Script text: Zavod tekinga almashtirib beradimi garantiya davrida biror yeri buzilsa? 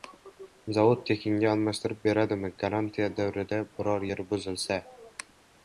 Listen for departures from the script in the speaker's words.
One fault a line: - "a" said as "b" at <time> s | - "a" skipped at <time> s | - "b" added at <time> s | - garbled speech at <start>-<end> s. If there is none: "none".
none